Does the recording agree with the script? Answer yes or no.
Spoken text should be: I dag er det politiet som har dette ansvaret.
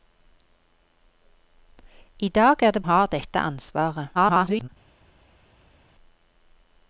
no